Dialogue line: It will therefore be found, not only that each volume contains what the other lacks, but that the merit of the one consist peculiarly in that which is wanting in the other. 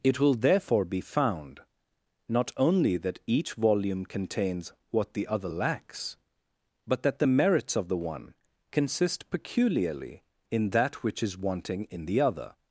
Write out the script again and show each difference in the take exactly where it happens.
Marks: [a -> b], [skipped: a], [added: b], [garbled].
It will therefore be found, not only that each volume contains what the other lacks, but that the [merit -> merits] of the one consist peculiarly in that which is wanting in the other.